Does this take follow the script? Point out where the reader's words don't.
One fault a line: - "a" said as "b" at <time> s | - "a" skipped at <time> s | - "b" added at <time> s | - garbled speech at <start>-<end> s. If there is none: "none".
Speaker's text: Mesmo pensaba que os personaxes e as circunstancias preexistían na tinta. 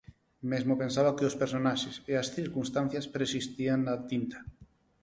none